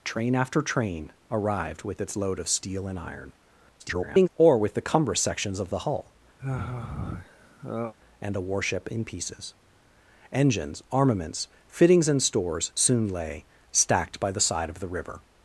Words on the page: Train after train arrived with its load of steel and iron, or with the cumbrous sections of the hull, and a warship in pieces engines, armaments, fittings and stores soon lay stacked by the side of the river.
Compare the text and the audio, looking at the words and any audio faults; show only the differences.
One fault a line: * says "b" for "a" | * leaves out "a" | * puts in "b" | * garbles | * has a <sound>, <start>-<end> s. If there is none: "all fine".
* garbles
* has a sigh, 6.4-7.9 s